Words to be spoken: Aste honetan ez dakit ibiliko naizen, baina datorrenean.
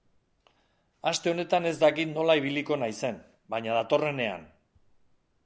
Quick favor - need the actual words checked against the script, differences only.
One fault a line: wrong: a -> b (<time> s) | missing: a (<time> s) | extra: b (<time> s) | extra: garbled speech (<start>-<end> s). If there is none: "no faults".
extra: nola (2.1 s)